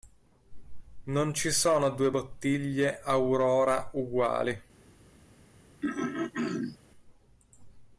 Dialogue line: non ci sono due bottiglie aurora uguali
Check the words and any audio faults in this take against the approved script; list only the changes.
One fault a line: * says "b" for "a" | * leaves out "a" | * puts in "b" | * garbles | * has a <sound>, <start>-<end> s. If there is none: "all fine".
* has a throat clearing, 5.8-6.8 s